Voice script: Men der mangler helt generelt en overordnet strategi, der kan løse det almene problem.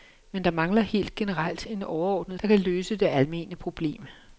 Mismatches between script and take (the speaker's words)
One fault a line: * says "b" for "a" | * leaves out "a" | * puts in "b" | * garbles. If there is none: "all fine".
* leaves out "strategi"